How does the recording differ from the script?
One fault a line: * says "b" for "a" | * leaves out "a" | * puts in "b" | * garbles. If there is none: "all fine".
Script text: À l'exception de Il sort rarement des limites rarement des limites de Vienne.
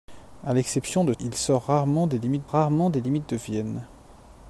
all fine